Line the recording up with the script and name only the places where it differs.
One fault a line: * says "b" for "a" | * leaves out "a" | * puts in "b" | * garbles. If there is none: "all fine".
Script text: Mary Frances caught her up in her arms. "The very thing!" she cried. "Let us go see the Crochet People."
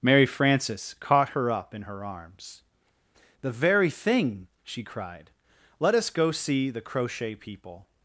all fine